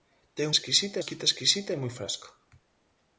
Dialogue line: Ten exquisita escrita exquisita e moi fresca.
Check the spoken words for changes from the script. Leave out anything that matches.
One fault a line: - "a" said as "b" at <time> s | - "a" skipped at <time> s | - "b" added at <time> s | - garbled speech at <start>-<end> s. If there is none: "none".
none